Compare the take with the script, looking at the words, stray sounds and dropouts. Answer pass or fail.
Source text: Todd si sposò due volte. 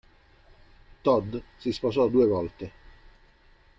pass